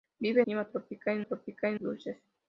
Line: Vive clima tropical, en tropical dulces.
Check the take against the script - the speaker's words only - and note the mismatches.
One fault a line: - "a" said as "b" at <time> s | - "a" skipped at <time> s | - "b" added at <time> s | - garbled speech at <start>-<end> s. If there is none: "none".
none